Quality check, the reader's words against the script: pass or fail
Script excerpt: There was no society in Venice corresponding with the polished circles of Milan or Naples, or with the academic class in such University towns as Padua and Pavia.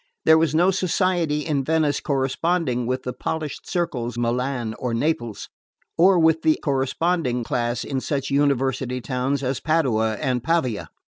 fail